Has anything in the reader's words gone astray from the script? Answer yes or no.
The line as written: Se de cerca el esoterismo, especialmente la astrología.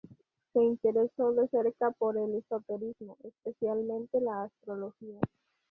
yes